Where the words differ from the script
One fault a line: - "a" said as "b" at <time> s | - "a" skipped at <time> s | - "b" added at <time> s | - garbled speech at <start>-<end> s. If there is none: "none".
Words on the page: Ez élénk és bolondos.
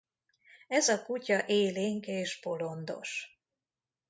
- "a kutya" added at 0.9 s